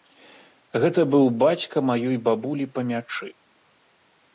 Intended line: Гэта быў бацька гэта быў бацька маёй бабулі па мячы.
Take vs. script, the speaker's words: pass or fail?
fail